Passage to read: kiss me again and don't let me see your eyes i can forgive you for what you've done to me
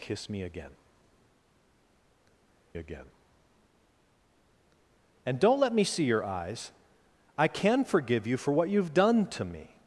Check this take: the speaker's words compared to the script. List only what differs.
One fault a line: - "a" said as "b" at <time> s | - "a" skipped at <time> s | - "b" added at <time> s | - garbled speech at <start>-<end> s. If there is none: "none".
- "again" added at 2.7 s